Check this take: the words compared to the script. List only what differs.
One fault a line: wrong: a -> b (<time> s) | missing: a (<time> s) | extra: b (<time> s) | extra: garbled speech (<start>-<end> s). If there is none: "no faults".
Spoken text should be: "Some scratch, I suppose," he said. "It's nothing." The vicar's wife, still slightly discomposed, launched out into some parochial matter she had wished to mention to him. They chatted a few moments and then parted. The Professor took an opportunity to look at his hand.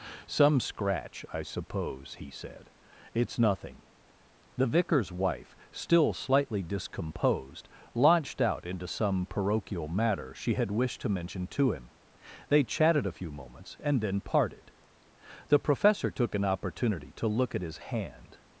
no faults